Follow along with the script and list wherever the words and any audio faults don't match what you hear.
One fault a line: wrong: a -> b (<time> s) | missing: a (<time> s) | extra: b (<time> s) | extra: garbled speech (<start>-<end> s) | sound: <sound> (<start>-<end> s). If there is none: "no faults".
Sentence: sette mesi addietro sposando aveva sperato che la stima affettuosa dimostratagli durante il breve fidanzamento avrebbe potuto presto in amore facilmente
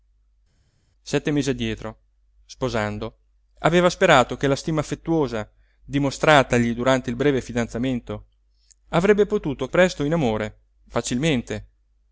no faults